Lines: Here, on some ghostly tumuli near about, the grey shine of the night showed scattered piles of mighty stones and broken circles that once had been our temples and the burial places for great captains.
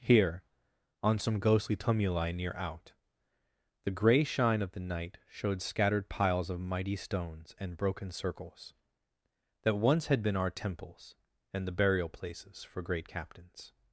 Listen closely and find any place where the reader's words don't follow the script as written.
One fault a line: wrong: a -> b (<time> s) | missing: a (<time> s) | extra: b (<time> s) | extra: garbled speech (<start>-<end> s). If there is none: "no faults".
wrong: about -> out (2.5 s)